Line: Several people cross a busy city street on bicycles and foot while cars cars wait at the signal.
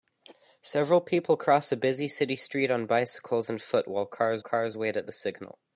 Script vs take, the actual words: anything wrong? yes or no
no